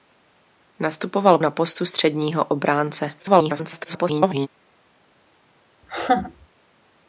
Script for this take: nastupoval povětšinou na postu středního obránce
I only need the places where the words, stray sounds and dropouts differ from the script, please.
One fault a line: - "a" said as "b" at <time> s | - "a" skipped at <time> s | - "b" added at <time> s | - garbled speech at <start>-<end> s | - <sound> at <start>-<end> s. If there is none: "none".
- "povětšinou" skipped at 1.4 s
- garbled speech at 3.2-4.5 s
- laugh at 5.8-6.5 s